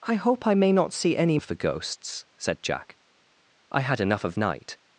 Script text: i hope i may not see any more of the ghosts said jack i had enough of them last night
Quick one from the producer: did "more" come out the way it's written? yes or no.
no